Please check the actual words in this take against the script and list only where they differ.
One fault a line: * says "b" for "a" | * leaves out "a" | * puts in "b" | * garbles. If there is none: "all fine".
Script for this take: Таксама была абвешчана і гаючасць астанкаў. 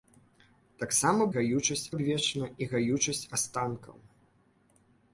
* says "гаючасць" for "была"